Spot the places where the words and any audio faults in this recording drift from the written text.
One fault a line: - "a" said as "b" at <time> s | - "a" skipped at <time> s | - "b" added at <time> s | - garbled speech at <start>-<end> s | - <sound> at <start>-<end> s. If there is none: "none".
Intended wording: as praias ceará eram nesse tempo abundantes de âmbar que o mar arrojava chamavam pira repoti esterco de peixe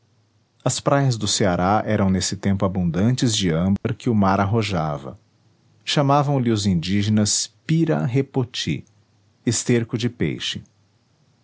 - "do" added at 1.1 s
- dropout at 3.8-3.8 s
- "lhe os indígenas" added at 6.4 s